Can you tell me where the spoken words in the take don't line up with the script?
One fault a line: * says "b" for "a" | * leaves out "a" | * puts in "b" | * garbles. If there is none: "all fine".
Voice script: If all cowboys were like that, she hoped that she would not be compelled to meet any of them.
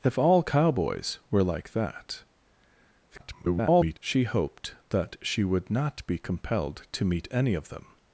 * garbles